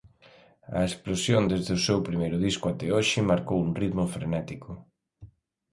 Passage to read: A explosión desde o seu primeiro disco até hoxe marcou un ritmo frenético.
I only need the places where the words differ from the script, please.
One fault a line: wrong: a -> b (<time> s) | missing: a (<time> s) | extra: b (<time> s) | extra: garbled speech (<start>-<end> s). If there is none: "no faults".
no faults